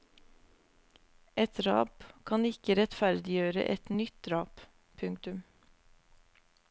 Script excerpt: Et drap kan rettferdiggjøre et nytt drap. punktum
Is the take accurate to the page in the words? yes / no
no